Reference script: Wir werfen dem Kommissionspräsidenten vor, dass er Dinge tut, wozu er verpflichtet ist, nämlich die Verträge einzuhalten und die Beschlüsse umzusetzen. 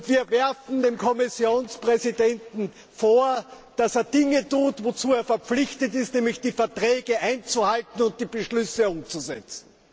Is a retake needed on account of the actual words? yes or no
no